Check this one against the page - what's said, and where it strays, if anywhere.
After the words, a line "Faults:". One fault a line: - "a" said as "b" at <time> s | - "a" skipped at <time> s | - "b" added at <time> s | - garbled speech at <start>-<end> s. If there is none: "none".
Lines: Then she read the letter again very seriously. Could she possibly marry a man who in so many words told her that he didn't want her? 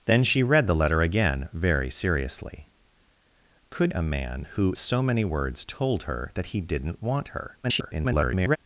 Then she read the letter again very seriously. Could a man who so many words told her that he didn't want her? [garbled]
Faults:
- "she possibly marry" skipped at 3.9 s
- "in" skipped at 4.7 s
- garbled speech at 7.6-8.6 s